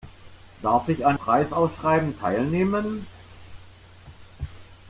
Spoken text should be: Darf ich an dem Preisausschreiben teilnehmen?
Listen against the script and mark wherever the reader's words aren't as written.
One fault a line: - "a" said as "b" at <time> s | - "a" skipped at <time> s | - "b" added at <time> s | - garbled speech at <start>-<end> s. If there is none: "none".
- "dem" skipped at 1.2 s